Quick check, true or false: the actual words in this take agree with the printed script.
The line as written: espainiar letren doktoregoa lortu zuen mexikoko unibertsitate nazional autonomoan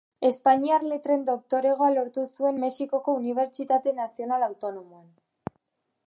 true